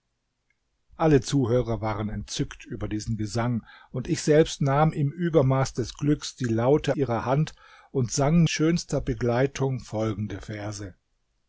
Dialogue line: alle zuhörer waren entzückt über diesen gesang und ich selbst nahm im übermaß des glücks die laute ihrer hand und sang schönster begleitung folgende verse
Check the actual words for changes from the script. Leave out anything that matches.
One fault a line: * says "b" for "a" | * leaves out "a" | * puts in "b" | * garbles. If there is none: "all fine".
all fine